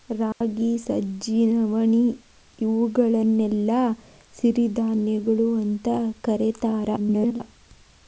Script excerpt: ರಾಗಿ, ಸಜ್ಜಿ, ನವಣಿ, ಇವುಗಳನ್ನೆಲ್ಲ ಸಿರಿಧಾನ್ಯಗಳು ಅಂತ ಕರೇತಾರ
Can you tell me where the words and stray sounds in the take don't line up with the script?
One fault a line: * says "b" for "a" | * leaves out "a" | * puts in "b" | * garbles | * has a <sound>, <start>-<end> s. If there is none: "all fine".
* has a dropout, 0.3-0.4 s
* garbles